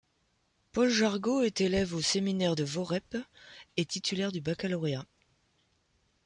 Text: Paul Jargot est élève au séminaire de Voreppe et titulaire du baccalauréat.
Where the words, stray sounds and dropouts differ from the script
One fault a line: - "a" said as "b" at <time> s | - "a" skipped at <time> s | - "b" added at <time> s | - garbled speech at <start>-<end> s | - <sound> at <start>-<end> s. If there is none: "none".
none